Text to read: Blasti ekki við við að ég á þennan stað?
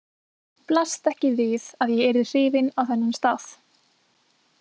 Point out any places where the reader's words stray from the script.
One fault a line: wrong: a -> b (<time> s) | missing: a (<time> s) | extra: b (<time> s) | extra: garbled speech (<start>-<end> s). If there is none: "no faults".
missing: við (1.7 s)
extra: yrði hrifin (2.1 s)